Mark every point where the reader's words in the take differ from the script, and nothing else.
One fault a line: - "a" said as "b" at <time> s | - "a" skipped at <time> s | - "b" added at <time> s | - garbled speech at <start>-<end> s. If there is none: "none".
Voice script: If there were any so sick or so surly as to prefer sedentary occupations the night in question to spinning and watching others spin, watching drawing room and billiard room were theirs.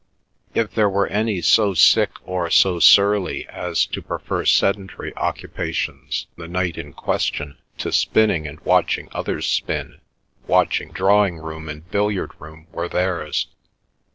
none